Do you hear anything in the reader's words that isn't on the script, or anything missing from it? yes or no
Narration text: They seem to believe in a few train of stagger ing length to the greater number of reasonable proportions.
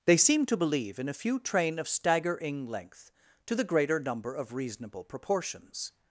no